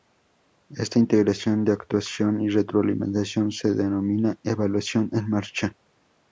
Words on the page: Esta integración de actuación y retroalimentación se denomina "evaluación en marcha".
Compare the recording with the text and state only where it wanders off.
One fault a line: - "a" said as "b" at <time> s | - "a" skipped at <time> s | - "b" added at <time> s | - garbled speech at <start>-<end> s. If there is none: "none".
none